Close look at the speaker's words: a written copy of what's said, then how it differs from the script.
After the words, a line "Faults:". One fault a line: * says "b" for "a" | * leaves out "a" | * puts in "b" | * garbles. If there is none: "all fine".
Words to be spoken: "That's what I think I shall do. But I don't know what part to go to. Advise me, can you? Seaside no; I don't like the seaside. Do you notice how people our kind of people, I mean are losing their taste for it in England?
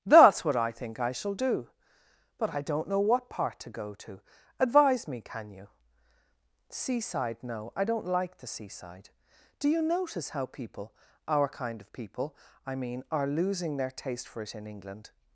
"That's what I think I shall do. But I don't know what part to go to. Advise me, can you? Seaside no; I don't like the seaside. Do you notice how people our kind of people, I mean are losing their taste for it in England?
Faults:
all fine